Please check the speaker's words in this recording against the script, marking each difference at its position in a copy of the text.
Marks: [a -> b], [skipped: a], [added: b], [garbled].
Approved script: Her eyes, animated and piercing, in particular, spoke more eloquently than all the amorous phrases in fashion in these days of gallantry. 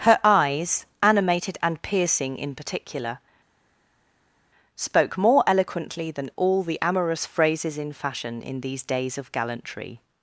Her eyes, animated and piercing, in particular, spoke more eloquently than all the amorous phrases in fashion in these days of gallantry.